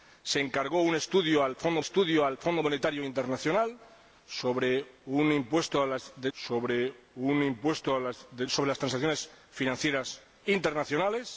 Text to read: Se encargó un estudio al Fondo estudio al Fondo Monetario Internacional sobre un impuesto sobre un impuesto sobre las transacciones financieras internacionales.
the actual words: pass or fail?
pass